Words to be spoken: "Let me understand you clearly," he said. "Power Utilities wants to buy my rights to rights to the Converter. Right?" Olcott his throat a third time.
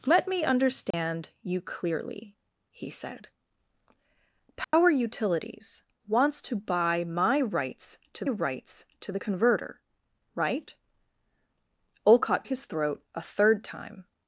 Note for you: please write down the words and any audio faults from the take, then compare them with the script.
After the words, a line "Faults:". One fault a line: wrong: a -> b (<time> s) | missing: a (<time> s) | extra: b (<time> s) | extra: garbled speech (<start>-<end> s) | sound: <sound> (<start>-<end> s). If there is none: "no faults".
"Let me understand you clearly," he said. "Power Utilities wants to buy my rights to rights to the Converter. Right?" Olcott his throat a third time.
Faults:
sound: dropout (0.9-0.9 s)
sound: dropout (4.6-4.7 s)